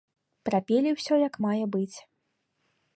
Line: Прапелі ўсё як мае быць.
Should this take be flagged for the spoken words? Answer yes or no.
no